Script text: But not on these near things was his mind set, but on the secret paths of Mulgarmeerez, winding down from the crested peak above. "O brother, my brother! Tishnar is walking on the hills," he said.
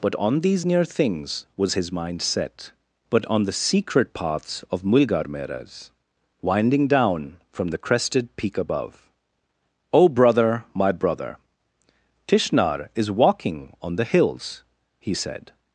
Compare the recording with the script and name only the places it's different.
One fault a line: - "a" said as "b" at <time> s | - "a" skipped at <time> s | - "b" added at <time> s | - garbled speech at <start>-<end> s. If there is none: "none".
- "not" skipped at 0.1 s